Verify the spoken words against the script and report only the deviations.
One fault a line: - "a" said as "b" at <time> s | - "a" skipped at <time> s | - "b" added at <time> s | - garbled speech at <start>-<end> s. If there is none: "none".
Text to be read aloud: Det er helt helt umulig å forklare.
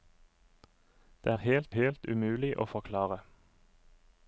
none